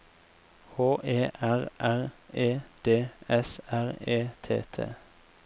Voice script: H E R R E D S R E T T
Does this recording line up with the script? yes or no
yes